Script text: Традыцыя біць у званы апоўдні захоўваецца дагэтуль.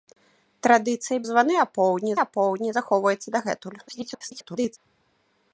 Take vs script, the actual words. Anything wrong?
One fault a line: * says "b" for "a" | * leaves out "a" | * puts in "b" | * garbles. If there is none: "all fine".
* leaves out "біць"
* puts in "апоўдні"
* garbles